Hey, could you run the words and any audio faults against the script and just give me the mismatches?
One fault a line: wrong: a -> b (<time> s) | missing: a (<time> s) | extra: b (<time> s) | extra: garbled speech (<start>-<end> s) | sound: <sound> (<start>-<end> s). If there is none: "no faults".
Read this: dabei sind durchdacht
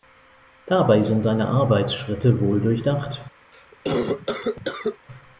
extra: seine arbeitsschritte wohl (1.2 s)
sound: cough (3.5-5.1 s)